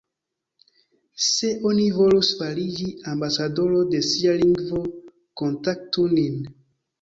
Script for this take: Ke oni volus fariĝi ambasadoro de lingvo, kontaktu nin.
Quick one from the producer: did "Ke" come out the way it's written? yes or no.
no